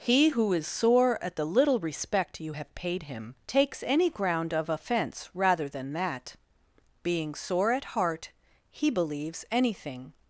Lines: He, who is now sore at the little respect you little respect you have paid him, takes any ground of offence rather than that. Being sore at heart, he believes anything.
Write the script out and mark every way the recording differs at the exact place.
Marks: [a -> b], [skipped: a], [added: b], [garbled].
He, who is [skipped: now] sore at the little respect you [skipped: little respect you] have paid him, takes any ground of offence rather than that. Being sore at heart, he believes anything.